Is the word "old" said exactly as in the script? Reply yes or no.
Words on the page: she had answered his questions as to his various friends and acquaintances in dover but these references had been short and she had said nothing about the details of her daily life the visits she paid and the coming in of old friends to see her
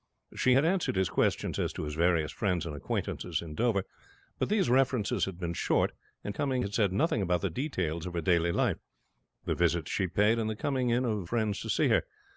no